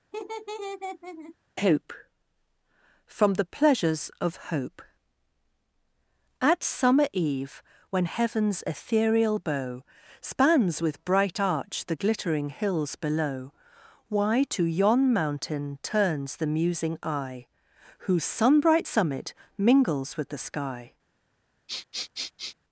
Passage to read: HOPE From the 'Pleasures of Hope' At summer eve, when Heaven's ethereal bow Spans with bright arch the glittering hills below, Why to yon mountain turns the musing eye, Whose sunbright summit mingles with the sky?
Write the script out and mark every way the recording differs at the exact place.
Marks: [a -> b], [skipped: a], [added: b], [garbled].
HOPE From the 'Pleasures of Hope' At summer eve, when Heaven's ethereal bow Spans with bright arch the glittering hills below, Why to yon mountain turns the musing eye, Whose sunbright summit mingles with the sky?